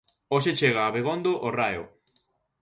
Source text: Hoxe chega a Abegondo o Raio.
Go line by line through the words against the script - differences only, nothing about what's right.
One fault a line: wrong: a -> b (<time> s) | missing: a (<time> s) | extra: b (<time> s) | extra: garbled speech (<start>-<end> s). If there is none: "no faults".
no faults